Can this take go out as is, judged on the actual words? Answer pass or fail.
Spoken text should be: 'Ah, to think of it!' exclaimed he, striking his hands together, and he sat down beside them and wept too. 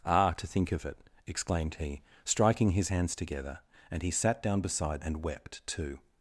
fail